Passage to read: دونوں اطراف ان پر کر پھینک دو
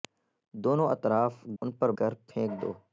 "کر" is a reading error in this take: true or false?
false